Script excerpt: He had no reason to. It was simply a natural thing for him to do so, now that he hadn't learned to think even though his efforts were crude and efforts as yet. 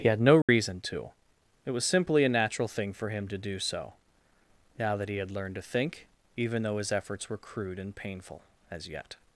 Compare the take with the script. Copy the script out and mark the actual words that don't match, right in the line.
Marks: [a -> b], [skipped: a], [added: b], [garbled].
He had no reason to. It was simply a natural thing for him to do so, now that he [hadn't -> had] learned to think even though his efforts were crude and [efforts -> painful] as yet.